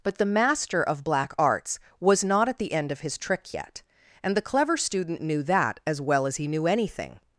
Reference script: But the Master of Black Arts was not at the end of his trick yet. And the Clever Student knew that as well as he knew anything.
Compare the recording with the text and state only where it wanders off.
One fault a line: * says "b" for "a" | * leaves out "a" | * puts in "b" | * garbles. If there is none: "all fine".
all fine